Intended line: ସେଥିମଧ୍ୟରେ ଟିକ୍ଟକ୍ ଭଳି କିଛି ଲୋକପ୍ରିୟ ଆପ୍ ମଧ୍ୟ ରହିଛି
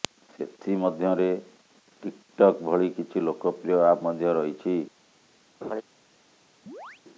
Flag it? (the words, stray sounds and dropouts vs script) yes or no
yes